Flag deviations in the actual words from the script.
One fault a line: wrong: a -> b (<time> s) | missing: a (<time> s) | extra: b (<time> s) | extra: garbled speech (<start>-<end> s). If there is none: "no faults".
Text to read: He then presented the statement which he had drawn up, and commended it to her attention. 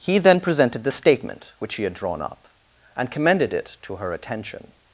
no faults